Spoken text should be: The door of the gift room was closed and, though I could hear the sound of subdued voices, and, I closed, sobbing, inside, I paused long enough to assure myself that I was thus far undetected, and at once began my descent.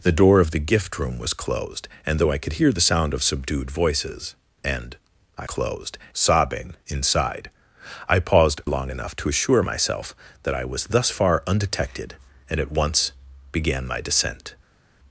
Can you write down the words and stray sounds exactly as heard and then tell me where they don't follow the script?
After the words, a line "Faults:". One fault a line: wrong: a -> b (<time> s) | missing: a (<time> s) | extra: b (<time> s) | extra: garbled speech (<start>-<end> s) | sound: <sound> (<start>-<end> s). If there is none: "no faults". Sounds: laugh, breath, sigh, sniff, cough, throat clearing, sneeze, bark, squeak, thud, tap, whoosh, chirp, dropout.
The door of the gift room was closed and, though I could hear the sound of subdued voices, and, I closed, sobbing, inside, I paused long enough to assure myself that I was thus far undetected, and at once began my descent.
Faults:
no faults